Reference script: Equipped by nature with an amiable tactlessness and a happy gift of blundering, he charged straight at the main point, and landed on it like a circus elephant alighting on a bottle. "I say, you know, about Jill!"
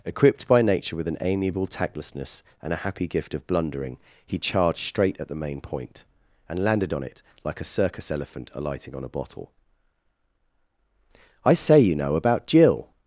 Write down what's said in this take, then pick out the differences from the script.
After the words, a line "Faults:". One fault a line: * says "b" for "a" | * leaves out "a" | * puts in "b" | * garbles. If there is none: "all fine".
Equipped by nature with an amiable tactlessness and a happy gift of blundering, he charged straight at the main point, and landed on it like a circus elephant alighting on a bottle. "I say, you know, about Jill!"
Faults:
all fine